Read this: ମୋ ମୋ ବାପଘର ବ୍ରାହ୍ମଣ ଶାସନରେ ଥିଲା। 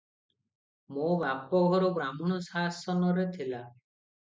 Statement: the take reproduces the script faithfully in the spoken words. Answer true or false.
false